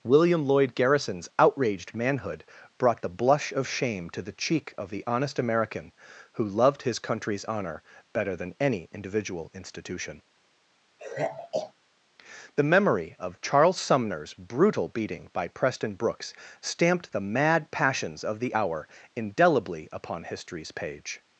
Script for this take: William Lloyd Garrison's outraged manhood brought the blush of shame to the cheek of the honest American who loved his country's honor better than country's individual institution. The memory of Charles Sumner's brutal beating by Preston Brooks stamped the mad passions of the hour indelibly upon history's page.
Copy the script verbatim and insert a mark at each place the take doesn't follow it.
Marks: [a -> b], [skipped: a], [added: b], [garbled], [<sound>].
William Lloyd Garrison's outraged manhood brought the blush of shame to the cheek of the honest American who loved his country's honor better than [country's -> any] individual institution. [sigh] The memory of Charles Sumner's brutal beating by Preston Brooks stamped the mad passions of the hour indelibly upon history's page.